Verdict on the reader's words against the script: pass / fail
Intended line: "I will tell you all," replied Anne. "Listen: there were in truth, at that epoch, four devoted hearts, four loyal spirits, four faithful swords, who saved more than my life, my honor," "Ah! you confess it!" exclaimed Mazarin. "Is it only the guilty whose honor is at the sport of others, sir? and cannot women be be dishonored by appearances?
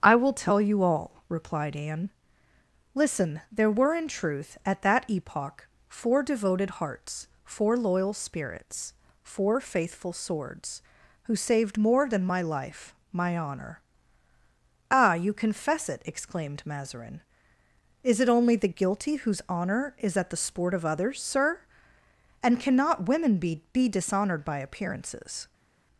pass